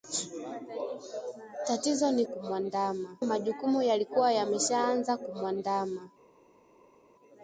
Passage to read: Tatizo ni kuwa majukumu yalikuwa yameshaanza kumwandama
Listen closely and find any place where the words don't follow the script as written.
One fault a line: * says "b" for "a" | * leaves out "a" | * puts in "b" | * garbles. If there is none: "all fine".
* says "kumwandama" for "kuwa"